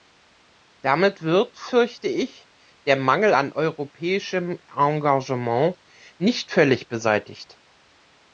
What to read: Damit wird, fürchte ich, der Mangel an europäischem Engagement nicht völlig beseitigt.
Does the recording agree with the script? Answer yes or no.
yes